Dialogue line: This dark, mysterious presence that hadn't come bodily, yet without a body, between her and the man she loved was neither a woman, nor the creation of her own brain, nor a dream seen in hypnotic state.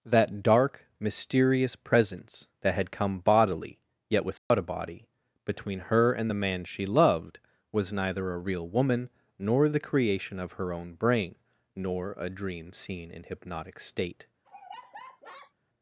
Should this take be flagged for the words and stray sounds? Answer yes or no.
yes